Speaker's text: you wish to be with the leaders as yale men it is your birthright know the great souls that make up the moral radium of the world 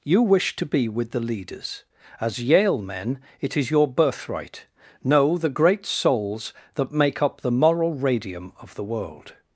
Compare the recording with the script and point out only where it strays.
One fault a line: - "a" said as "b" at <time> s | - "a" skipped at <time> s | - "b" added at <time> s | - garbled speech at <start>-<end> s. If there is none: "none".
none